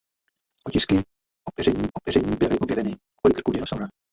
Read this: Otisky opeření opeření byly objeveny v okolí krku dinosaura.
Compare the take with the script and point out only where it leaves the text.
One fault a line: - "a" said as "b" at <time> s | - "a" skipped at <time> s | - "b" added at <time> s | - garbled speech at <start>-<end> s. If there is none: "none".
none